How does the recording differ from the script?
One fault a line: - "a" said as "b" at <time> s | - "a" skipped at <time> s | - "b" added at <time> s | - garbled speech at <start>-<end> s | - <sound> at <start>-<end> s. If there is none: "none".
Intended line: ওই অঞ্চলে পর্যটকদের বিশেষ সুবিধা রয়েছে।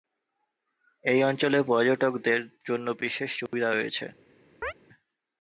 - "ওই" said as "এই" at 1.0 s
- "জন্য" added at 2.7 s
- dropout at 3.5-3.5 s
- chirp at 4.6-4.7 s